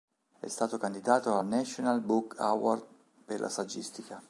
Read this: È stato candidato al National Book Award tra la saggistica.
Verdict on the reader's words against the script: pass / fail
fail